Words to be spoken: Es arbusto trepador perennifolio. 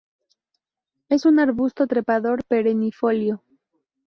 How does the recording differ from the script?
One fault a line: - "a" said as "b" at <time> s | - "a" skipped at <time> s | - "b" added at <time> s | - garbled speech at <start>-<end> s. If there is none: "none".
- "un" added at 1.3 s